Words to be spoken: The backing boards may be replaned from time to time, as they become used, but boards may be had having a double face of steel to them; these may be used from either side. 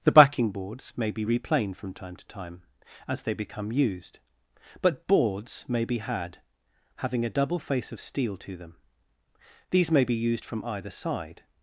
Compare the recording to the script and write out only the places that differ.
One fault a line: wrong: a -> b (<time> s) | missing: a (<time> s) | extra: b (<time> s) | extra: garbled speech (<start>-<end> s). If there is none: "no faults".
no faults